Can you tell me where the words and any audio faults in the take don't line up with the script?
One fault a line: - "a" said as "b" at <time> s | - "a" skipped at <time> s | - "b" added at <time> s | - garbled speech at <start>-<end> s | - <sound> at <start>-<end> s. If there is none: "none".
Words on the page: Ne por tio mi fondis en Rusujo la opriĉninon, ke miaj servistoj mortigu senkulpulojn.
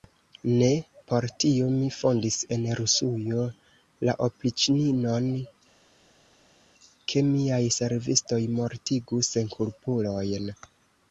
none